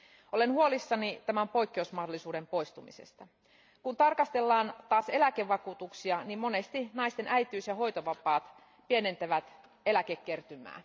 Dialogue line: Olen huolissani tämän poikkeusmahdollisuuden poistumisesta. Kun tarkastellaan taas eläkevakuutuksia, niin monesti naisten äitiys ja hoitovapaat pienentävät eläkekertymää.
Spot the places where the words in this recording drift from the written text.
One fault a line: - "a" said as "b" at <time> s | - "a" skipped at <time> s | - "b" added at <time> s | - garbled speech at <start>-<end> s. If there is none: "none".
none